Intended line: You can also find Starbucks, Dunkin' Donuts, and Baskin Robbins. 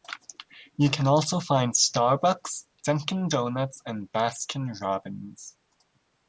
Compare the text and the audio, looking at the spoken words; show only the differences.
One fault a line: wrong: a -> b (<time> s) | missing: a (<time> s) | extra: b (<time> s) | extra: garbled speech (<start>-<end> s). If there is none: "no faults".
no faults